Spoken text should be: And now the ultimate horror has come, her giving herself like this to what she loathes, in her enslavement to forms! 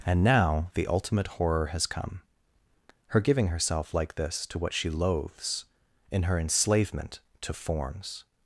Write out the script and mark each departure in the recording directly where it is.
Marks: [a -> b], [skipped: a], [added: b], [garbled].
And now the ultimate horror has come, her giving herself like this to what she loathes, in her enslavement to forms!